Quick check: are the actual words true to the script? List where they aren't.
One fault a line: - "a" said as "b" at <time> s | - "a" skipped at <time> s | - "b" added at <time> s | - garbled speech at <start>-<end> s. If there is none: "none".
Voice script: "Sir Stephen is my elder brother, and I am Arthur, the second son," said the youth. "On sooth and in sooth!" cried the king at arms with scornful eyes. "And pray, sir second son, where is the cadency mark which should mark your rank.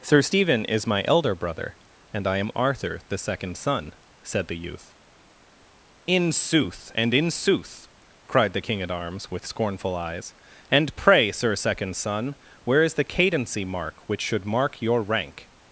- "On" said as "In" at 6.1 s